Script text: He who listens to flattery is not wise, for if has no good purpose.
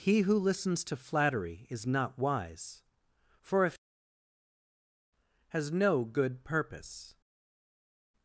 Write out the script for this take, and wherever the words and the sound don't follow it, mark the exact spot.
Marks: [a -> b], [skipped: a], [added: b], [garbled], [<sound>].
He who listens to flattery is not wise, for if has no good purpose.